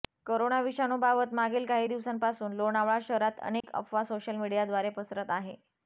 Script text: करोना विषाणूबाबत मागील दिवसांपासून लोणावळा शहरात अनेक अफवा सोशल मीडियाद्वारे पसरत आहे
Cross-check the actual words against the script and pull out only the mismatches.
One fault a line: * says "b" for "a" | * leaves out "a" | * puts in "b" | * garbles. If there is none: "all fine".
* puts in "काही"